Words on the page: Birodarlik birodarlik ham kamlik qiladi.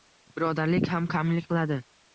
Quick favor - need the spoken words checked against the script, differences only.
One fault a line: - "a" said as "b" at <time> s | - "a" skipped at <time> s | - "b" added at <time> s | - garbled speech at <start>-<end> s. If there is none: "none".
- "birodarlik" skipped at 0.9 s